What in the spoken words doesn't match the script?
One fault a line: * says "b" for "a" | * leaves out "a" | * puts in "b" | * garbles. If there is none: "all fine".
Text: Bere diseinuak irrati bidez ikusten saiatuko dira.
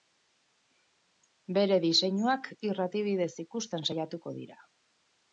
all fine